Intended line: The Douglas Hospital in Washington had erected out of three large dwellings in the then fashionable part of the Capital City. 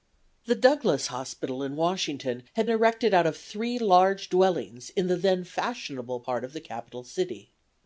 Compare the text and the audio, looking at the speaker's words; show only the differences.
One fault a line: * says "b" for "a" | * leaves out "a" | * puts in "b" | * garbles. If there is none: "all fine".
all fine